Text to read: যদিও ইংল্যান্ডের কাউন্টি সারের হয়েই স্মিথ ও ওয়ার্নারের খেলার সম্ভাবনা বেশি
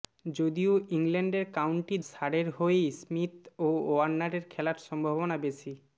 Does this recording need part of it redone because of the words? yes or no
no